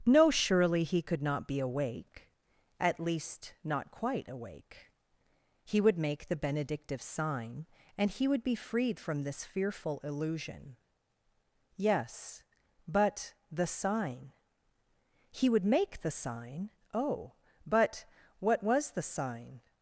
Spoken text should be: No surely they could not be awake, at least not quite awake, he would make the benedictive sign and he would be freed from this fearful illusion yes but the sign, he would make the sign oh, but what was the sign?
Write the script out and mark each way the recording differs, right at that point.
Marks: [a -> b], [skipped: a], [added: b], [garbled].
No surely [they -> he] could not be awake, at least not quite awake, he would make the benedictive sign and he would be freed from this fearful illusion yes but the sign, he would make the sign oh, but what was the sign?